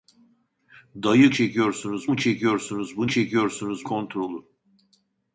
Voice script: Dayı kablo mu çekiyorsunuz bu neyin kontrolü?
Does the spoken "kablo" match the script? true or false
false